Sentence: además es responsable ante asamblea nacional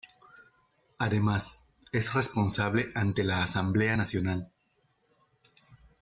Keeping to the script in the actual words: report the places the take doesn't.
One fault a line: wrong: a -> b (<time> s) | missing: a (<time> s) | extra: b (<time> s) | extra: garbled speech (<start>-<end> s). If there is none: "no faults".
extra: la (3.2 s)